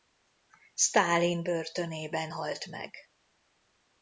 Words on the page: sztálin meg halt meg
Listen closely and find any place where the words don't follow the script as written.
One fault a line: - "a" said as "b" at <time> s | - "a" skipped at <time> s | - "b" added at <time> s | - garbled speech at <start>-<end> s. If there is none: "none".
- "meg" said as "börtönében" at 1.4 s